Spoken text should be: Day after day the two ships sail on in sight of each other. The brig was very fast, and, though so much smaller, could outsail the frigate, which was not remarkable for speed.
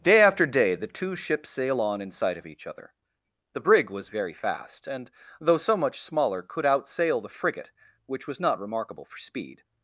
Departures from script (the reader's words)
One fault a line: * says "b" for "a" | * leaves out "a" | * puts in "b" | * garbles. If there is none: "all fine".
all fine